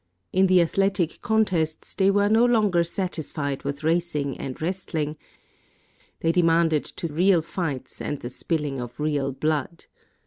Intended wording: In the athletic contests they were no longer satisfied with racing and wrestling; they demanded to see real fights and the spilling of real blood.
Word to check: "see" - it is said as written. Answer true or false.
false